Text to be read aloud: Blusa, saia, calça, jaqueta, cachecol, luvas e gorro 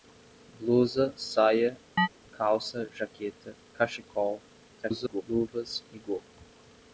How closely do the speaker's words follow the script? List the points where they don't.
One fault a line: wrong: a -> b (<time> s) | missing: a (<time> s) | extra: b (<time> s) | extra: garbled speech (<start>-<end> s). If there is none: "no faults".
extra: garbled speech (4.7-5.2 s)